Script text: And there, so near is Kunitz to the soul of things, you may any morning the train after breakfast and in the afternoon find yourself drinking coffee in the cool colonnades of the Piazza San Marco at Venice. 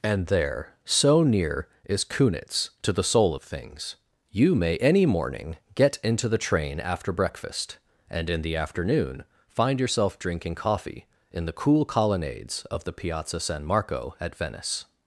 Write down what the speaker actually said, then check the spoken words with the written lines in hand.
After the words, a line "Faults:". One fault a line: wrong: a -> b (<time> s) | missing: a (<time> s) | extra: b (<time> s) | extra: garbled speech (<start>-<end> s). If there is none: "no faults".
And there, so near is Kunitz to the soul of things, you may any morning get into the train after breakfast and in the afternoon find yourself drinking coffee in the cool colonnades of the Piazza San Marco at Venice.
Faults:
extra: get into (5.7 s)